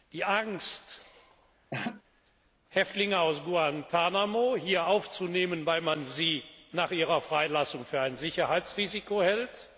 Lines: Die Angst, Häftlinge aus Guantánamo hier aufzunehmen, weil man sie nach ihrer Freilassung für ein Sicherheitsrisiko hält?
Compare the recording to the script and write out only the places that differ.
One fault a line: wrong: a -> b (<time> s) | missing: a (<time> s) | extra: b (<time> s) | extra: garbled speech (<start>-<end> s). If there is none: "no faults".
no faults